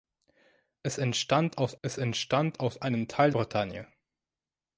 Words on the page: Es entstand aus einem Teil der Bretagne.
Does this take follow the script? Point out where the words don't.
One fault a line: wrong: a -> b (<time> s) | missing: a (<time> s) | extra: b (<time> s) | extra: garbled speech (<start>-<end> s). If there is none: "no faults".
extra: es entstand aus (1.8 s)
missing: der (3.3 s)